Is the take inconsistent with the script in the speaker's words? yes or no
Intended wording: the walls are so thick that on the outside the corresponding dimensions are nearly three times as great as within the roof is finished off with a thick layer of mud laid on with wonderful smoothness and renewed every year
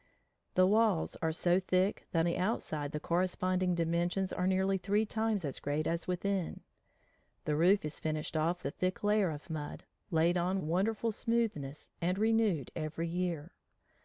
yes